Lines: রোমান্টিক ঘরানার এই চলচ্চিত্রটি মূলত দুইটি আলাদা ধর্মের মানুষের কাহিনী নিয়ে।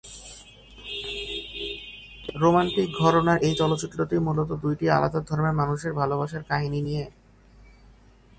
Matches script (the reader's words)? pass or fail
fail